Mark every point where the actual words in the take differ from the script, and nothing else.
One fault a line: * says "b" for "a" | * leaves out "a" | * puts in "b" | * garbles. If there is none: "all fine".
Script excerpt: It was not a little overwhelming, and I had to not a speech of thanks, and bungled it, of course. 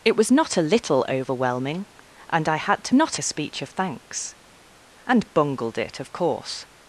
all fine